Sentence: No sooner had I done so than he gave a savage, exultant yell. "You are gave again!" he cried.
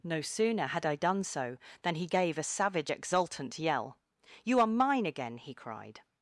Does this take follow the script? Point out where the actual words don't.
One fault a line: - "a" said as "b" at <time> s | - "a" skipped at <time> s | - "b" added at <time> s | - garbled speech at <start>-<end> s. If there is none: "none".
- "gave" said as "mine" at 4.7 s